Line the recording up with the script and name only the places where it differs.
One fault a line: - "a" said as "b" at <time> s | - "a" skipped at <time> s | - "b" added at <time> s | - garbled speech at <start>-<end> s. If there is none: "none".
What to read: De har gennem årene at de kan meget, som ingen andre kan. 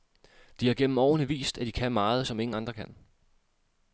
- "vist" added at 1.3 s